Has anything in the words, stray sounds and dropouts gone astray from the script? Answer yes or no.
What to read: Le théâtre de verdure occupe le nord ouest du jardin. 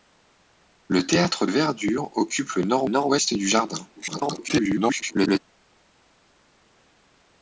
yes